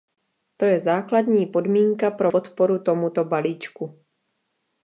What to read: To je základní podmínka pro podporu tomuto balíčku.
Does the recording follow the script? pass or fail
pass